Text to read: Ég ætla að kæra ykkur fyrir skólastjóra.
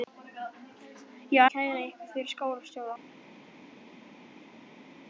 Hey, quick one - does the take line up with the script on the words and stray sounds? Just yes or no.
no